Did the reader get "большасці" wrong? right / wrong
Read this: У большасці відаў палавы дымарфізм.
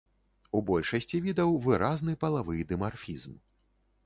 right